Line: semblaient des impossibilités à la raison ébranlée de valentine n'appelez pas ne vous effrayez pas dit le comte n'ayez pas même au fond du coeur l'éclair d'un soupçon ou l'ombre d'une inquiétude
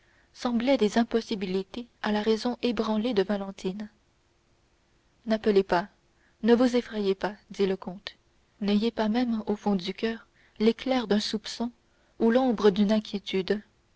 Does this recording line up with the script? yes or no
yes